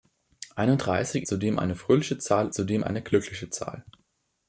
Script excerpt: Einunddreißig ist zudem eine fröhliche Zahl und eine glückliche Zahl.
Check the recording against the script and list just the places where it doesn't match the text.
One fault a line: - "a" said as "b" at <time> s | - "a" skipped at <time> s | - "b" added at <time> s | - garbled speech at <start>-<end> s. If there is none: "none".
- "ist" skipped at 1.3 s
- "und" said as "zudem" at 2.5 s